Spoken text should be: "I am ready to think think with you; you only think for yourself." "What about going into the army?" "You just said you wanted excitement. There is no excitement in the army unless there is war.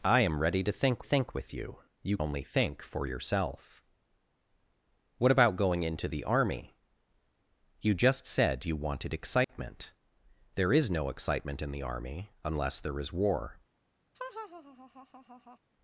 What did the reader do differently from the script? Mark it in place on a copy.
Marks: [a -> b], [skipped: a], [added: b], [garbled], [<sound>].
"I am ready to think think with you; you only think for yourself." "What about going into the army?" "You just said you wanted excitement. [dropout] There is no excitement in the army unless there is war. [laugh]